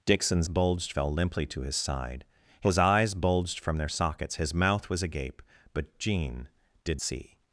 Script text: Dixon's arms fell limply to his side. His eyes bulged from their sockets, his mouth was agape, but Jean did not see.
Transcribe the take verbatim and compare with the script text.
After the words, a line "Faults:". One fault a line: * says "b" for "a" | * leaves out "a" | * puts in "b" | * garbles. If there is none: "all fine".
Dixon's bulged fell limply to his side. His eyes bulged from their sockets, his mouth was agape, but Jean did see.
Faults:
* says "bulged" for "arms"
* leaves out "not"